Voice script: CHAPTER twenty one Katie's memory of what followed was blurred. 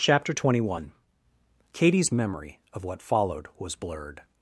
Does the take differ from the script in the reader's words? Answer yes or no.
no